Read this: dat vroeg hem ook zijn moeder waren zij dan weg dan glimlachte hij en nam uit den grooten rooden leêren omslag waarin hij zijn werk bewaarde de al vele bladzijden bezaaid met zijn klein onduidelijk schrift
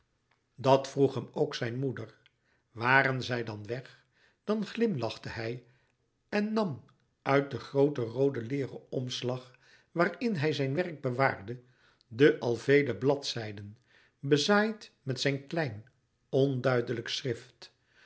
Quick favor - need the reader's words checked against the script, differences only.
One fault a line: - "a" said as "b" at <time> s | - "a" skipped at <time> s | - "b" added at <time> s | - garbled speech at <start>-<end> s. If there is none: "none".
none